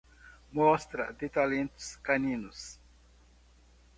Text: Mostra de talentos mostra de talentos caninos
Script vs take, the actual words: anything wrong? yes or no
yes